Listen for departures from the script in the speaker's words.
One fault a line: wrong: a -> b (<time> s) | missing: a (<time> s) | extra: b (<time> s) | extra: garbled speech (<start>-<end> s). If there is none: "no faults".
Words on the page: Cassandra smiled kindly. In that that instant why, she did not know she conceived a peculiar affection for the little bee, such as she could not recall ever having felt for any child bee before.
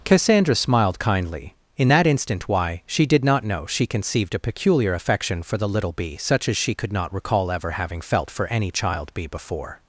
missing: that (2.1 s)